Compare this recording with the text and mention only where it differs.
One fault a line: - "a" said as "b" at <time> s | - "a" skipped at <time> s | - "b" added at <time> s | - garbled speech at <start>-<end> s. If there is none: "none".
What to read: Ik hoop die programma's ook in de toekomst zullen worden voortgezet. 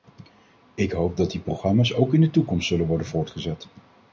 - "dat" added at 1.2 s